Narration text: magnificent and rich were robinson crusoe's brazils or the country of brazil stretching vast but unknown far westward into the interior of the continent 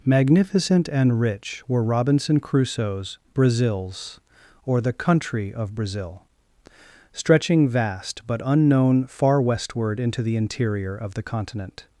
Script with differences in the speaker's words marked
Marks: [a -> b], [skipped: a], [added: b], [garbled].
magnificent and rich were robinson crusoe's brazils or the country of brazil stretching vast but unknown far westward into the interior of the continent